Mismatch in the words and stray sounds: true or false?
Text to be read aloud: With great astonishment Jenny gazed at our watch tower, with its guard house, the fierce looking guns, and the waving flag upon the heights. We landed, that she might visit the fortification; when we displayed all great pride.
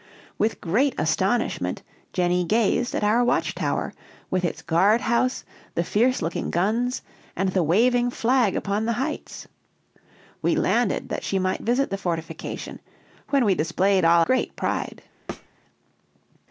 true